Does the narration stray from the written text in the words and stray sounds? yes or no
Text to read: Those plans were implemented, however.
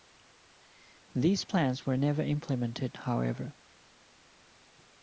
yes